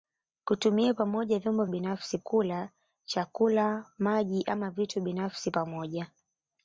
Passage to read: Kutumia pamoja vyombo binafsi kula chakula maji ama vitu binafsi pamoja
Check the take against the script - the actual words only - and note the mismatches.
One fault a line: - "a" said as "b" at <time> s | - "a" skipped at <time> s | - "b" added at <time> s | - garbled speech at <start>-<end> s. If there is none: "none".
none